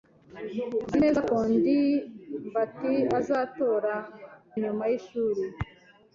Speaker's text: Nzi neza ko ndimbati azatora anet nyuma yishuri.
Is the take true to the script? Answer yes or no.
no